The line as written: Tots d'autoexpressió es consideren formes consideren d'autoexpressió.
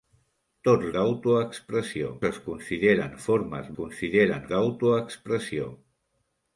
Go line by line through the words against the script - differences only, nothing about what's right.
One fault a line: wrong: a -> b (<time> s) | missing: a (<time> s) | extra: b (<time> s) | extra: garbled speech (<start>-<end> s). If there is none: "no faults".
no faults